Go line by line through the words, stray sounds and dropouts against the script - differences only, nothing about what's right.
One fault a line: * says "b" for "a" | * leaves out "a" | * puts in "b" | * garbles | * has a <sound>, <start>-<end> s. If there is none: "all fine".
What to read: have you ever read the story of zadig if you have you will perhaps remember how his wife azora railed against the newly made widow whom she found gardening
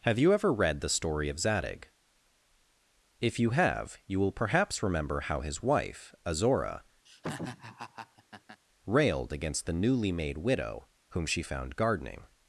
* has a laugh, 7.1-8.6 s